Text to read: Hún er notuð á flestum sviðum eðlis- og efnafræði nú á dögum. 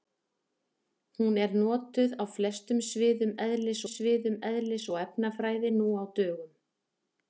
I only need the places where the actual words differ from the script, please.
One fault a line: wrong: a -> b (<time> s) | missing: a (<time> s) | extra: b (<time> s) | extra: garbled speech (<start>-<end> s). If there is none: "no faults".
extra: sviðum eðlis (3.9 s)